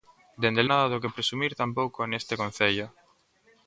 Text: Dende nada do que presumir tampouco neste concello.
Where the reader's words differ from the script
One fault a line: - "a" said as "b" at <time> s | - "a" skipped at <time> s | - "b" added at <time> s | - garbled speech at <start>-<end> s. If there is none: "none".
none